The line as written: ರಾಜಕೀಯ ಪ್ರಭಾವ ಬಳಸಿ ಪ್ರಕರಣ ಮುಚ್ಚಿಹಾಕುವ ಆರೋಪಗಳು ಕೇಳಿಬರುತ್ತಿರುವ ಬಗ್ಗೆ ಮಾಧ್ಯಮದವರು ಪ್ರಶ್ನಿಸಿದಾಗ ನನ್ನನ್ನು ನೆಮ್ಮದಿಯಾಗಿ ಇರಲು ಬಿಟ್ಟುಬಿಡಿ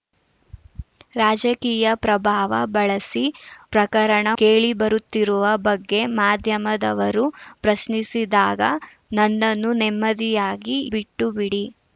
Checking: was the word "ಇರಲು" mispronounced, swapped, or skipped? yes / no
yes